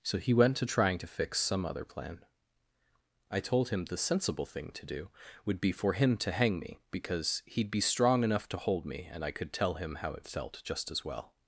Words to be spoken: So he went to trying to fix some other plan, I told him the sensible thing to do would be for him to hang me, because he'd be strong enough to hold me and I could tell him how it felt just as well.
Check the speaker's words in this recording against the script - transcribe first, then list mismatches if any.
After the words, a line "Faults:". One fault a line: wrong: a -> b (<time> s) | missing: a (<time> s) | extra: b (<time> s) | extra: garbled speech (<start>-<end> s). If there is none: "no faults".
So he went to trying to fix some other plan, I told him the sensible thing to do would be for him to hang me, because he'd be strong enough to hold me and I could tell him how it felt just as well.
Faults:
no faults